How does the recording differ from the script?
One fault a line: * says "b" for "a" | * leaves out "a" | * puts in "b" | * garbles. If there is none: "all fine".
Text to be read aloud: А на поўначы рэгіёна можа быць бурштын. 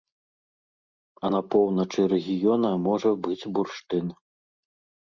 all fine